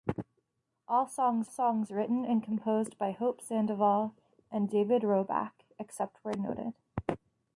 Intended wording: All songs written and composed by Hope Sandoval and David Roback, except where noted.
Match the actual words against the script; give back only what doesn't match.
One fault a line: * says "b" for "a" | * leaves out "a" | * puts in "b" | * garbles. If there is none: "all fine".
* puts in "songs"